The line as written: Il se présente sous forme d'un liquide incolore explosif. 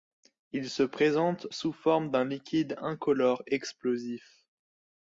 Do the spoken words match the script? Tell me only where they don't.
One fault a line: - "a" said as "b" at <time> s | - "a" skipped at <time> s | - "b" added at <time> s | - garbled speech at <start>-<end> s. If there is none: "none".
none